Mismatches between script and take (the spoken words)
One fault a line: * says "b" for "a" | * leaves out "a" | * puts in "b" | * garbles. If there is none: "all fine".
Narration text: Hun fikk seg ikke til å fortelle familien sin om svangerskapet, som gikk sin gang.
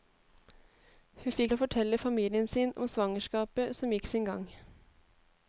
* leaves out "seg ikke til"